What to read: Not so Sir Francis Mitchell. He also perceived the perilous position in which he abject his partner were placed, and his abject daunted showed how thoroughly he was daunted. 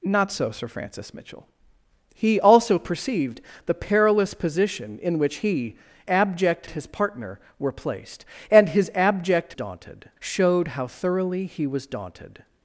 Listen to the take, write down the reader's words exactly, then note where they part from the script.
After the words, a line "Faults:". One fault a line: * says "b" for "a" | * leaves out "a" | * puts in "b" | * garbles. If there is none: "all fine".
Not so Sir Francis Mitchell. He also perceived the perilous position in which he abject his partner were placed, and his abject daunted showed how thoroughly he was daunted.
Faults:
all fine